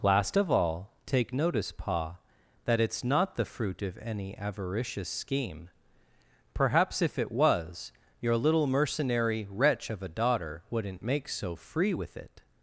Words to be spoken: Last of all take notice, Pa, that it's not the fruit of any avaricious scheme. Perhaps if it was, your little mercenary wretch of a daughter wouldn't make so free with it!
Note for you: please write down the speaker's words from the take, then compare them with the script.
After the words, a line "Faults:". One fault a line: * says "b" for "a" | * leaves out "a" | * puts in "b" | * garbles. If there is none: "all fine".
Last of all take notice, Pa, that it's not the fruit of any avaricious scheme. Perhaps if it was, your little mercenary wretch of a daughter wouldn't make so free with it!
Faults:
all fine